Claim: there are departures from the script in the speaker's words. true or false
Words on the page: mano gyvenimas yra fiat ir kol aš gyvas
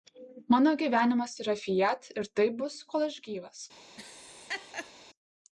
true